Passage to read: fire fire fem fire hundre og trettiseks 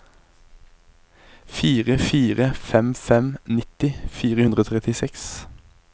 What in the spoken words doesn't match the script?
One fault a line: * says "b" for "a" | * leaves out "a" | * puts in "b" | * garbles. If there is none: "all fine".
* puts in "fem nitti"